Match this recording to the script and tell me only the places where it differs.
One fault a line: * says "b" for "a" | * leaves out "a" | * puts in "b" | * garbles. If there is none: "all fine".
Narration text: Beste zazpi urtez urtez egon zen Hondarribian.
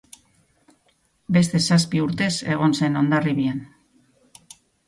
* leaves out "urtez"